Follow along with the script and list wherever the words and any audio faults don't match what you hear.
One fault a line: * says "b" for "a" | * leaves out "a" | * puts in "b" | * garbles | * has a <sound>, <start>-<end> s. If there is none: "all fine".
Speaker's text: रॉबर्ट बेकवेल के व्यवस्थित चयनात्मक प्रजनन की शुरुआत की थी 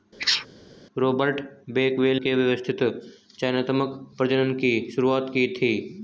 * has a sneeze, 0.2-0.5 s